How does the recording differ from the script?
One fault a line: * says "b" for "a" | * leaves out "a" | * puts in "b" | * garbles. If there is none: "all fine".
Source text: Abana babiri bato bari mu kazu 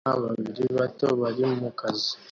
all fine